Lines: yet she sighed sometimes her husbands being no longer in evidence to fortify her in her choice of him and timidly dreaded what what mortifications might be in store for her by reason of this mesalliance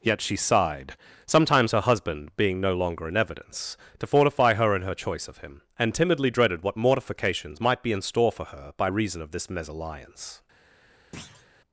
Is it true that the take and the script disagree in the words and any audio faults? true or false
true